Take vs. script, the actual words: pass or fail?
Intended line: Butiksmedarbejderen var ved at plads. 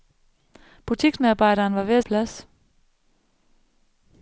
pass